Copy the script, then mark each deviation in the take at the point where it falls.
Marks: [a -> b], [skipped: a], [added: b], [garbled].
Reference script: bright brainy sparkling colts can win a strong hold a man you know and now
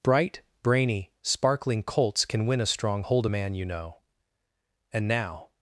bright brainy sparkling colts can win a strong hold a man you know and now